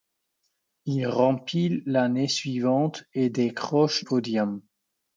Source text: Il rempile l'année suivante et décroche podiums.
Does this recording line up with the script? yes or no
yes